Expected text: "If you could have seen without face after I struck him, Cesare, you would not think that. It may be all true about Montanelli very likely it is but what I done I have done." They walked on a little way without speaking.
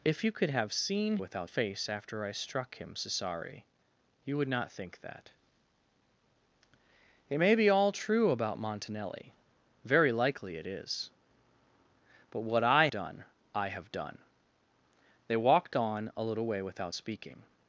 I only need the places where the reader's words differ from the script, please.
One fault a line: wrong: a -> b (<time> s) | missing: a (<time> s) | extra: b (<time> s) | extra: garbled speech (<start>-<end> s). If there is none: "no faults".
no faults